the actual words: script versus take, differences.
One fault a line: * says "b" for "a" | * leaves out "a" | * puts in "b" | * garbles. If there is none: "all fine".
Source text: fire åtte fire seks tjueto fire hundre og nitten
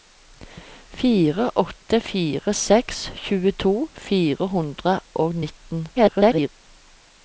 * garbles